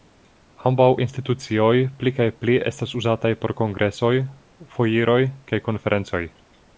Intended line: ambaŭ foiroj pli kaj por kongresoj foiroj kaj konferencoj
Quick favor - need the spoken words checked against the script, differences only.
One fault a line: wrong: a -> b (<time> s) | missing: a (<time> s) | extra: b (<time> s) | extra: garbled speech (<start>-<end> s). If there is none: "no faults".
wrong: foiroj -> institucioj (1.0 s)
extra: pli estas uzataj (2.4 s)